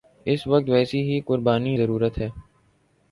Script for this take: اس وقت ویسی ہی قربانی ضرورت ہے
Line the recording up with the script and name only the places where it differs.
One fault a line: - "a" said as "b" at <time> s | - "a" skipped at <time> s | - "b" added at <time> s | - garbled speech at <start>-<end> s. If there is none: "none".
none